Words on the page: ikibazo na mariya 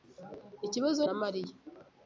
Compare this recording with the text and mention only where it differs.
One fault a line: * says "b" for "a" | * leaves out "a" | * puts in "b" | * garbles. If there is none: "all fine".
all fine